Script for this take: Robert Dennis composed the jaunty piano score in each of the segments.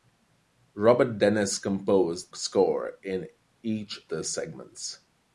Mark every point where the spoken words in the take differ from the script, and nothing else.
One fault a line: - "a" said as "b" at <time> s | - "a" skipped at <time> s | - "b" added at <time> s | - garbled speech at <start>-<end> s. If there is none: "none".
- "the jaunty piano" skipped at 2.3 s
- "of" skipped at 4.1 s